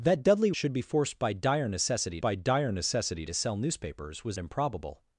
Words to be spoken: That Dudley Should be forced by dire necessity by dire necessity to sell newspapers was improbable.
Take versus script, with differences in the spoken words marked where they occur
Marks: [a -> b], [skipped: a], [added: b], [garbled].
That Dudley Should be forced by dire necessity by dire necessity to sell newspapers was improbable.